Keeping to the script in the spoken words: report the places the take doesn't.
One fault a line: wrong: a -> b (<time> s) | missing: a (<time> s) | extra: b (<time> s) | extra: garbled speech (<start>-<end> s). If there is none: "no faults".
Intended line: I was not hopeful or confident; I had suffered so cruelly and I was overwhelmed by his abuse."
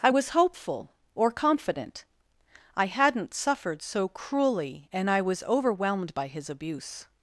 missing: not (0.3 s)
wrong: had -> hadn't (2.8 s)